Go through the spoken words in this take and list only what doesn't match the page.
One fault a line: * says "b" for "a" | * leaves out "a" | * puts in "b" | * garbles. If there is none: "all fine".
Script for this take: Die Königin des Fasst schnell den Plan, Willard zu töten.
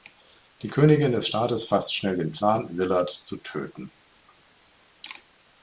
* puts in "Staates"